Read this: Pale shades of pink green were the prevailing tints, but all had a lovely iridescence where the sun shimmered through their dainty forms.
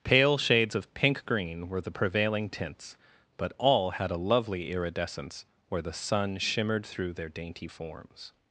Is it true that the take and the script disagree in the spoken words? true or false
false